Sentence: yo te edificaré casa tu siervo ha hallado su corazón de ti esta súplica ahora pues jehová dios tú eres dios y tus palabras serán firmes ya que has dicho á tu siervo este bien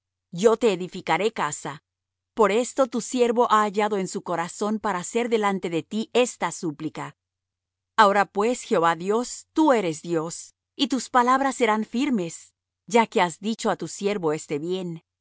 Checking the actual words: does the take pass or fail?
fail